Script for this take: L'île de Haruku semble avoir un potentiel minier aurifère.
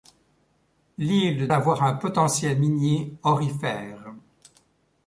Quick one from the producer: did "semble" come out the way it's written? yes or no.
no